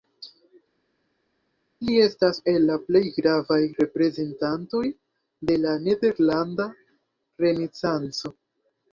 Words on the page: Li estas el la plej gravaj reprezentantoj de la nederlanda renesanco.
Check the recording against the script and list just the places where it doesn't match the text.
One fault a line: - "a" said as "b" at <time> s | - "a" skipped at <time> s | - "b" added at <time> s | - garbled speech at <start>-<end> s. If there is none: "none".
none